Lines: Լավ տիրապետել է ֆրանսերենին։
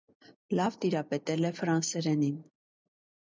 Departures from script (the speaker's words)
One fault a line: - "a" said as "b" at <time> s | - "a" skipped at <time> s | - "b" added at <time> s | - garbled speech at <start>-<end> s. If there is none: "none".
none